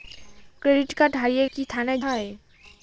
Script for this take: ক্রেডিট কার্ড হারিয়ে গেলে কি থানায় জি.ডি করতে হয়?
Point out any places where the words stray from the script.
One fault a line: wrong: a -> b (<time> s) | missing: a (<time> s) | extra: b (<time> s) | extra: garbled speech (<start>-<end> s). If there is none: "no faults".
missing: গেলে (1.4 s)
missing: জি.ডি করতে (2.0 s)